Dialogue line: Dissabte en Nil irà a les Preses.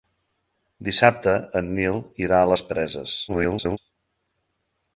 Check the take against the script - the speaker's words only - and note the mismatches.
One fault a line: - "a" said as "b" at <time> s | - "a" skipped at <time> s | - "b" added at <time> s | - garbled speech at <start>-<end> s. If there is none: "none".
- garbled speech at 3.3-3.8 s